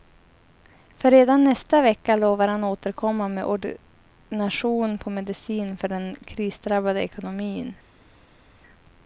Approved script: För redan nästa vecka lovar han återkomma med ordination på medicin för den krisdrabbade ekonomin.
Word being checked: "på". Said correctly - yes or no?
yes